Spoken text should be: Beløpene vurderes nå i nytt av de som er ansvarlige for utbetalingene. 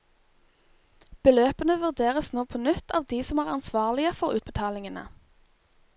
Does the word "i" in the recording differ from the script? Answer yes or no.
yes